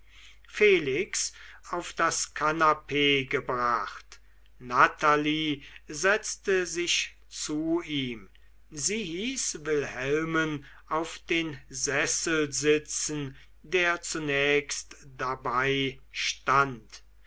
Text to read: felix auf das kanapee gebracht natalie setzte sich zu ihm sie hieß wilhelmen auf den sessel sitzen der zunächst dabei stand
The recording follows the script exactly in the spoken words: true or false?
true